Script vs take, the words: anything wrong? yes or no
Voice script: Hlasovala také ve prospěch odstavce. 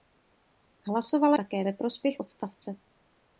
no